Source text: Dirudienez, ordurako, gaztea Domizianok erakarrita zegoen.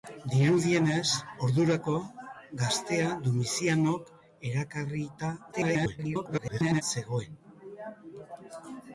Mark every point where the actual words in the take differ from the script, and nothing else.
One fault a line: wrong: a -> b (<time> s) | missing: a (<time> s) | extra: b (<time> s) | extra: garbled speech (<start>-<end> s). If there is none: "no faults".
extra: garbled speech (5.5-6.8 s)